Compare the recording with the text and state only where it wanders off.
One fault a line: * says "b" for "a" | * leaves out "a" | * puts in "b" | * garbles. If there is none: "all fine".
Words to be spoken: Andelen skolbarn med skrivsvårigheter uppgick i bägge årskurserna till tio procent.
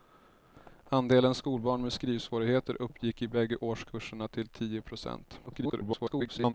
* garbles